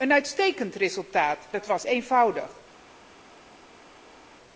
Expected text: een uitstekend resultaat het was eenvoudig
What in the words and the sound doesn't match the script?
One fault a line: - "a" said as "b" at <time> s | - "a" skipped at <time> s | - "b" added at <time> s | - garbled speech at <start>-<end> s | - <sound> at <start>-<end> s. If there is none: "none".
none